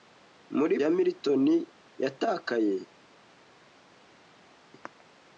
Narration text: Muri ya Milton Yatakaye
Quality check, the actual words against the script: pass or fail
pass